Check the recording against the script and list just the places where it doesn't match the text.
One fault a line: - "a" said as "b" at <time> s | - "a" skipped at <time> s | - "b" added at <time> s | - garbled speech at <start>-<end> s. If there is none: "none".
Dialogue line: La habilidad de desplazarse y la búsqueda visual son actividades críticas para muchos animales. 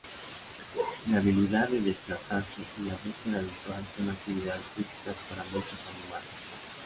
none